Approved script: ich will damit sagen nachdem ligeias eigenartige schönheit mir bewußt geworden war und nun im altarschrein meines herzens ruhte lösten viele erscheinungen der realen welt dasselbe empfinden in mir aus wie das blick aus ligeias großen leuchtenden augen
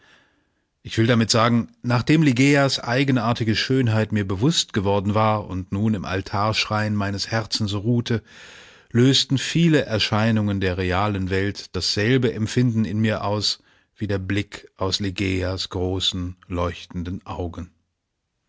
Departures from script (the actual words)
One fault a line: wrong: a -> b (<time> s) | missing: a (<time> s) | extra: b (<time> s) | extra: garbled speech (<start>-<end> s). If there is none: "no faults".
wrong: das -> der (14.0 s)